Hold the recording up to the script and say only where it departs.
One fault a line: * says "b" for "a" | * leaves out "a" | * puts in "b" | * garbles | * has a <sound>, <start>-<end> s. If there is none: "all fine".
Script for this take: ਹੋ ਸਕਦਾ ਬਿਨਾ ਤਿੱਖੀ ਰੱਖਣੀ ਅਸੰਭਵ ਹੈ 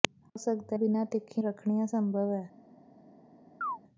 * has a chirp, 3.6-3.8 s